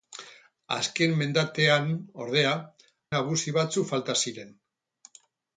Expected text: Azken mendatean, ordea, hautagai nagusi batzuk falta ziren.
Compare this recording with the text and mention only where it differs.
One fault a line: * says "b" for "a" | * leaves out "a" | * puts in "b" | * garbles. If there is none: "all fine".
* leaves out "hautagai"